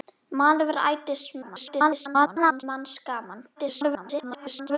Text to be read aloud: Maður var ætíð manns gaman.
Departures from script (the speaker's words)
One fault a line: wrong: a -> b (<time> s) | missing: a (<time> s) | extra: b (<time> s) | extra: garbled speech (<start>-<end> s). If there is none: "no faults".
extra: garbled speech (1.4-2.6 s)
extra: garbled speech (3.6-4.8 s)